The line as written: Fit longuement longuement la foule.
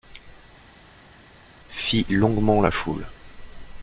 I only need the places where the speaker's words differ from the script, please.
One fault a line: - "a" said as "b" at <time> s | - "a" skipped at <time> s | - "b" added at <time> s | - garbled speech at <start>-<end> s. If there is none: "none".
- "longuement" skipped at 2.6 s